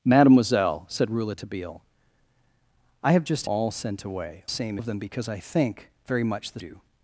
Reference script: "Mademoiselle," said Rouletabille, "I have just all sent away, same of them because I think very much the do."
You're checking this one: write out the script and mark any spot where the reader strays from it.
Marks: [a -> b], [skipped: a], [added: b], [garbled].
"Mademoiselle," said Rouletabille, "I have just all sent away, same of them because I think very much the do."